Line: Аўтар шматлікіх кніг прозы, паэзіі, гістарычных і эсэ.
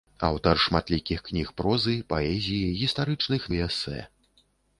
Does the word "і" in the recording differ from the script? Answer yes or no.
no